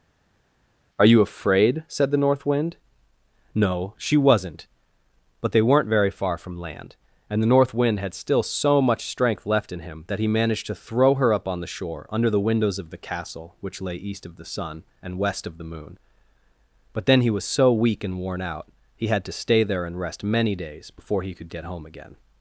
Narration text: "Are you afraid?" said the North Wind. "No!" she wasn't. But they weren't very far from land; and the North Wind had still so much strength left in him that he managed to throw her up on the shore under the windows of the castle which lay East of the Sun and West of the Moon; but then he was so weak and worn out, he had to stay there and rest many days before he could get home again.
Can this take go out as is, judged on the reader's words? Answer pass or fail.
pass